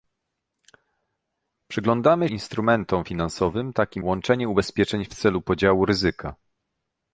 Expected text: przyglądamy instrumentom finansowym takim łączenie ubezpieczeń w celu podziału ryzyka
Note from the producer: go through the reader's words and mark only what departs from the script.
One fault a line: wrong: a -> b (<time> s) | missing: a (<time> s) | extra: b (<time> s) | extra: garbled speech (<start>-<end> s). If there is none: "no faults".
no faults